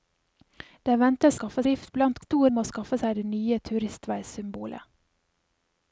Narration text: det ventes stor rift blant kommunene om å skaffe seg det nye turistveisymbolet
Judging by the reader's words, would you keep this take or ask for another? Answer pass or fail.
fail